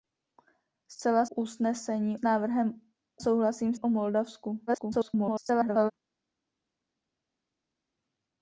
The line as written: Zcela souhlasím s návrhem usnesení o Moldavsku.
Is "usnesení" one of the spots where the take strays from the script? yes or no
yes